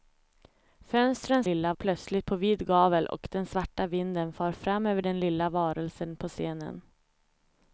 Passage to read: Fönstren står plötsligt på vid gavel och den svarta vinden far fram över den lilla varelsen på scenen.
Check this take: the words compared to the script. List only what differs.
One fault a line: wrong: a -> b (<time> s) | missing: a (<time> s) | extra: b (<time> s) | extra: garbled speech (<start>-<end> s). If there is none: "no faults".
wrong: står -> lilla (1.4 s)